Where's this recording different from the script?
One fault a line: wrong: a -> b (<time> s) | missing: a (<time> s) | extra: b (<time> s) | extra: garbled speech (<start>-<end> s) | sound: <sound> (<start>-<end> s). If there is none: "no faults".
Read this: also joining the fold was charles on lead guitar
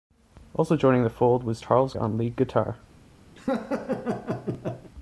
sound: laugh (3.4-4.9 s)